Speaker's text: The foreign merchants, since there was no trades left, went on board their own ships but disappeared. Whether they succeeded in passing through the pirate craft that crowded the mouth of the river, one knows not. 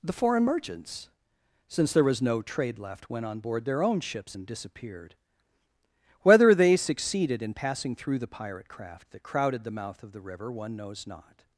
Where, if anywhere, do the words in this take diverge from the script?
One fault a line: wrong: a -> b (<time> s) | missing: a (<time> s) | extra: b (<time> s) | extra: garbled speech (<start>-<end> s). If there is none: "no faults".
wrong: trades -> trade (2.4 s)
wrong: but -> and (4.3 s)